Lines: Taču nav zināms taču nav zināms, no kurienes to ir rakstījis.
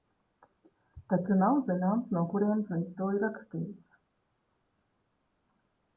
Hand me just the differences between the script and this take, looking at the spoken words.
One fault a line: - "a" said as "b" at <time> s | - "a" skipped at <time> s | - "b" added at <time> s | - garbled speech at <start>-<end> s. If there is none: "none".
- "taču nav zināms" skipped at 2.1 s
- "viņš" added at 2.7 s